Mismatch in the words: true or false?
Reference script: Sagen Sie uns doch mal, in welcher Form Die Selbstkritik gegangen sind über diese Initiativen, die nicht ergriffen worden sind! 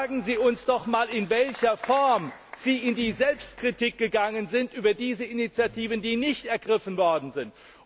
true